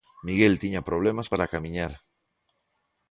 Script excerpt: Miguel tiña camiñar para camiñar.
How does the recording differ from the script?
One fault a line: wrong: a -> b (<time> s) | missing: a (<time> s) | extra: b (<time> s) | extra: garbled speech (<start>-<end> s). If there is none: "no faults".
wrong: camiñar -> problemas (0.9 s)